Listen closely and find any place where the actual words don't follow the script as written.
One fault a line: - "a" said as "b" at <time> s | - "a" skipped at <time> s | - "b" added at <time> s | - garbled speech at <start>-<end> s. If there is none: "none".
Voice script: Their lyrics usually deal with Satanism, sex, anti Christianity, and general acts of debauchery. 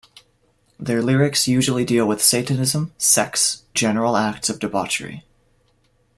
- "anti Christianity and" skipped at 3.6 s